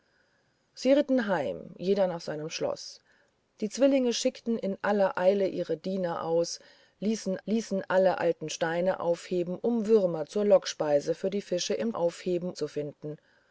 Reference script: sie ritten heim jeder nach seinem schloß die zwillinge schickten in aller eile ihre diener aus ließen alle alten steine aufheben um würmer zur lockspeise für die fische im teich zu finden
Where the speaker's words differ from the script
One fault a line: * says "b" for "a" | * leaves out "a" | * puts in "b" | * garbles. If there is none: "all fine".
* puts in "ließen"
* says "aufheben" for "teich"